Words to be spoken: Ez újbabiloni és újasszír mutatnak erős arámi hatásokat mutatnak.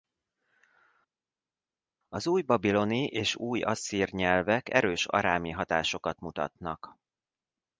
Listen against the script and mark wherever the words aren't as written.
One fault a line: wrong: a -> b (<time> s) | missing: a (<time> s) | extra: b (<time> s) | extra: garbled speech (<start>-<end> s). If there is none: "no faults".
wrong: Ez -> Az (2.1 s)
wrong: mutatnak -> nyelvek (4.1 s)